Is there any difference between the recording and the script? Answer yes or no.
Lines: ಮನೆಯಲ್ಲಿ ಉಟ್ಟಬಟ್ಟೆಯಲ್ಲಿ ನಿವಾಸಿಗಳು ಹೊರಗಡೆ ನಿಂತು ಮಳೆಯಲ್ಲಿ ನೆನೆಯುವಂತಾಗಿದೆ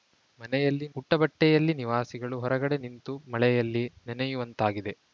no